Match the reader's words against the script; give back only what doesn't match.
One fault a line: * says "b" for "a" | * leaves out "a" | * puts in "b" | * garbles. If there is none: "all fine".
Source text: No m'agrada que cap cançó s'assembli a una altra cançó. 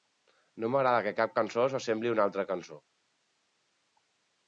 all fine